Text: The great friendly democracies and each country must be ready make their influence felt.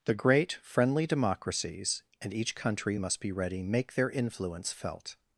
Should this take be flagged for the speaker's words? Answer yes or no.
no